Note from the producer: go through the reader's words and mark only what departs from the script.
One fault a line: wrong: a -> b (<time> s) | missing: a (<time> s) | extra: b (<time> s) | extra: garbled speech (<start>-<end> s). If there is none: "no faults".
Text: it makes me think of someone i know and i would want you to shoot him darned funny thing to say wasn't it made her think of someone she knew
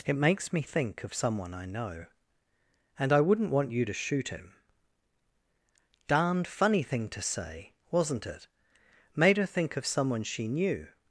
wrong: would -> wouldn't (3.2 s)